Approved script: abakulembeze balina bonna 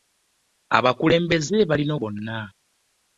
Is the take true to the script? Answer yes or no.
yes